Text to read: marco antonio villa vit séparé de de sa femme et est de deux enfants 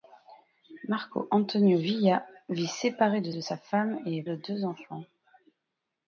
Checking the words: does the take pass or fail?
pass